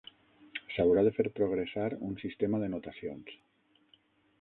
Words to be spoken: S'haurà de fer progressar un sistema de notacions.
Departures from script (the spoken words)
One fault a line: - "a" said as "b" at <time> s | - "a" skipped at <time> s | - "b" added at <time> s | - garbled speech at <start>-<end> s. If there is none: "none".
none